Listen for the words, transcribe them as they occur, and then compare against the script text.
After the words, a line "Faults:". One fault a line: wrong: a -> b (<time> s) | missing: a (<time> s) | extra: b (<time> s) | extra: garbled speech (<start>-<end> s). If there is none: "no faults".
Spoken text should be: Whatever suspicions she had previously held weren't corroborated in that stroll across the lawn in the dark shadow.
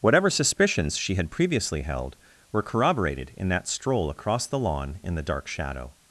Whatever suspicions she had previously held were corroborated in that stroll across the lawn in the dark shadow.
Faults:
wrong: weren't -> were (2.5 s)